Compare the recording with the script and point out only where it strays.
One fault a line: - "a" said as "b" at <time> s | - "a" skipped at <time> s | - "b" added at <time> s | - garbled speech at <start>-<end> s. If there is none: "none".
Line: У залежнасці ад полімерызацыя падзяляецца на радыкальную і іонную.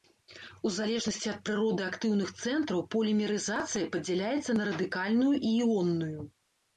- "прыроды актыўных цэнтраў" added at 1.5 s